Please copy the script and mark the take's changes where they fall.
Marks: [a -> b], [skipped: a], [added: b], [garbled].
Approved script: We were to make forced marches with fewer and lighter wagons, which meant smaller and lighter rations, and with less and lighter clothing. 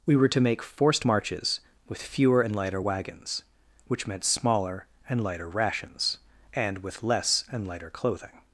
We were to make forced marches with fewer and lighter wagons, which meant smaller and lighter rations, and with less and lighter clothing.